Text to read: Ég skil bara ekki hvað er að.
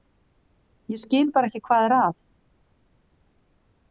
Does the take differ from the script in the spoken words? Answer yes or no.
no